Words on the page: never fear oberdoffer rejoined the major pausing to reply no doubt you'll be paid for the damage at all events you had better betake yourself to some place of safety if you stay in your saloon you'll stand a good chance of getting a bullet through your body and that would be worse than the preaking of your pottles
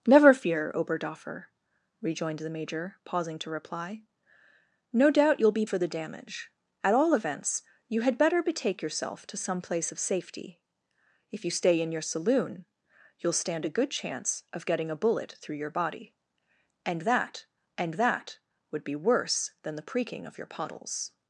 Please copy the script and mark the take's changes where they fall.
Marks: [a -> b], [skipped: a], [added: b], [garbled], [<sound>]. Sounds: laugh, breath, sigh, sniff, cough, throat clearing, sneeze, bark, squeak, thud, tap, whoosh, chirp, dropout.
never fear oberdoffer rejoined the major pausing to reply no doubt you'll be [skipped: paid] for the damage at all events you had better betake yourself to some place of safety if you stay in your saloon you'll stand a good chance of getting a bullet through your body and that [added: and that] would be worse than the preaking of your pottles